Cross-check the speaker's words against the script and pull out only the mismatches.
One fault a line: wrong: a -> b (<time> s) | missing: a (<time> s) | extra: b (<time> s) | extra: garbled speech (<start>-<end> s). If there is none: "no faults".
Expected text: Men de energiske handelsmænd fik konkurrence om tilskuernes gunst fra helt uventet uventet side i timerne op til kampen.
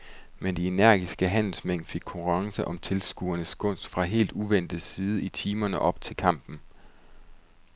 missing: uventet (4.8 s)